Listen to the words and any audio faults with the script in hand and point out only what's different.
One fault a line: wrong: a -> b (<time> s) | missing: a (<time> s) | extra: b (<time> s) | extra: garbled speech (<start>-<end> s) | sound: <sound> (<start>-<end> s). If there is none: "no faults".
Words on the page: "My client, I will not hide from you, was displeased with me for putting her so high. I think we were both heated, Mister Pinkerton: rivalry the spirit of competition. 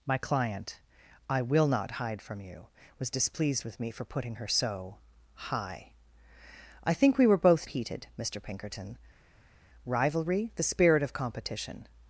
no faults